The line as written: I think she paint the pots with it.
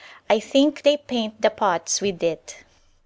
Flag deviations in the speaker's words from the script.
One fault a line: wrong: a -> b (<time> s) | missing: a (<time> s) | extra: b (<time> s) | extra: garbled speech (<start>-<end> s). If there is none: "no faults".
wrong: she -> they (0.8 s)